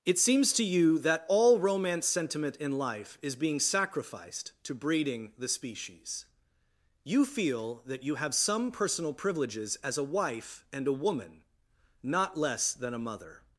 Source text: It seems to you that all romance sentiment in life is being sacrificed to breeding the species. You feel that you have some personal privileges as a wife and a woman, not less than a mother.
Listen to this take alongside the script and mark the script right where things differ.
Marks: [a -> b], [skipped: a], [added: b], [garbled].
It seems to you that all romance sentiment in life is being sacrificed to breeding the species. You feel that you have some personal privileges as a wife and a woman, not less than a mother.